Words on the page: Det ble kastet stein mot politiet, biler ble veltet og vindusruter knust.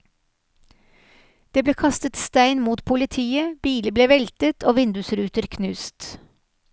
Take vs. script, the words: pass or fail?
pass